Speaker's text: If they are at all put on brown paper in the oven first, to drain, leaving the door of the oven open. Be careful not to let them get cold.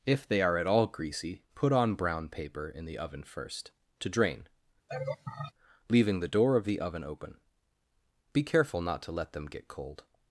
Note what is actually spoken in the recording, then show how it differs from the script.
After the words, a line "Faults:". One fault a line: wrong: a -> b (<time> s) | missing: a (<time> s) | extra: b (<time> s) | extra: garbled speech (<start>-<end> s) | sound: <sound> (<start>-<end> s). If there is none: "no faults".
If they are at all greasy, put on brown paper in the oven first, to drain, leaving the door of the oven open. Be careful not to let them get cold.
Faults:
extra: greasy (0.9 s)
sound: laugh (4.9-5.5 s)